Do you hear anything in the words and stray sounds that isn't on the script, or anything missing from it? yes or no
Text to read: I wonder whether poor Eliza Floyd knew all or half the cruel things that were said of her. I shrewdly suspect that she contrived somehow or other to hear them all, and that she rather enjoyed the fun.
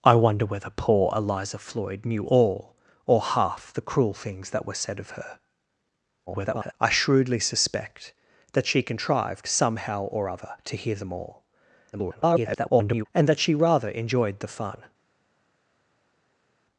yes